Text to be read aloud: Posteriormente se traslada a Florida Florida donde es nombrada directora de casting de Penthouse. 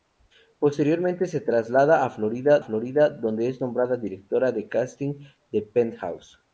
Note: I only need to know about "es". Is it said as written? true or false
true